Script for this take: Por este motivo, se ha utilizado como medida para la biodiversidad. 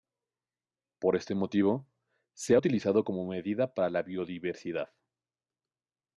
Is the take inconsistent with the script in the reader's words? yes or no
no